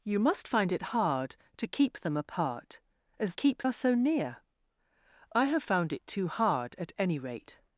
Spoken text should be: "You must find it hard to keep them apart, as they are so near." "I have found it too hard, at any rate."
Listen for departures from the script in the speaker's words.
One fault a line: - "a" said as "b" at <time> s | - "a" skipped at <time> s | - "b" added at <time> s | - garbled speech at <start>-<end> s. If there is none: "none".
- "they" said as "keep" at 3.3 s